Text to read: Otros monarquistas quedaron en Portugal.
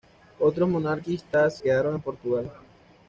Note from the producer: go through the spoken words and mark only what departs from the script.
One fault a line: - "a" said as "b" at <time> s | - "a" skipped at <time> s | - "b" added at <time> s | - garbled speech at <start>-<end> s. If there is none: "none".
none